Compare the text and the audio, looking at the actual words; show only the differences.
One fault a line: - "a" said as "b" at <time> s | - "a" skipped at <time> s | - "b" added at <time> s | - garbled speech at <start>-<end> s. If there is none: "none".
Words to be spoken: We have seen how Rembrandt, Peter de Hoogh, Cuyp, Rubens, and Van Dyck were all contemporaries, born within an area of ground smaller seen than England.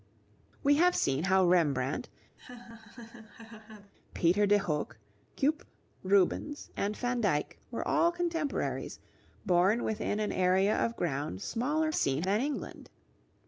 none